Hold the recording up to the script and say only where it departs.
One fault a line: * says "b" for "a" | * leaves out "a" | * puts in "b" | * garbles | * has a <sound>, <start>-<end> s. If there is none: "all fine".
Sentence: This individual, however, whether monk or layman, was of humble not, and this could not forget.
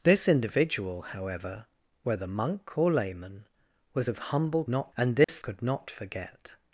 * has a dropout, 5.2-5.3 s